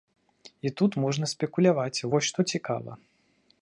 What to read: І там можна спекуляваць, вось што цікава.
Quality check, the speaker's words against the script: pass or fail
fail